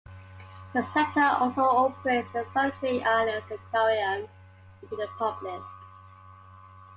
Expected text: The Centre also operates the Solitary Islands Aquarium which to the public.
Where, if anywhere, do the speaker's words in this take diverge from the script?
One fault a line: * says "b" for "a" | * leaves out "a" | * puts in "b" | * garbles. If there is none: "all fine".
all fine